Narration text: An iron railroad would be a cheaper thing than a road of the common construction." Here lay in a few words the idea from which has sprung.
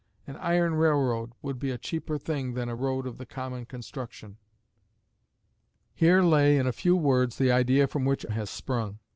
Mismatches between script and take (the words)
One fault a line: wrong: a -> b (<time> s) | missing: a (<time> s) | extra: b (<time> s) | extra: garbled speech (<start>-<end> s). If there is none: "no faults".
no faults